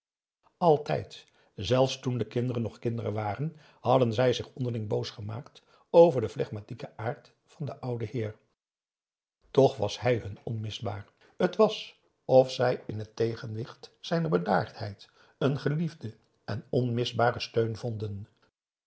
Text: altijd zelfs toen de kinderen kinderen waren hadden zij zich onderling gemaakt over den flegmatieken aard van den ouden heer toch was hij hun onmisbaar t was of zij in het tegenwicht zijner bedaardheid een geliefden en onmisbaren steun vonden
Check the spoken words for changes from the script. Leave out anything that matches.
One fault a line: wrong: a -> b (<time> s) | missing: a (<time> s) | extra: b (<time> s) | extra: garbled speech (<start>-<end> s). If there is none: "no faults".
extra: nog (2.6 s)
extra: boos (4.9 s)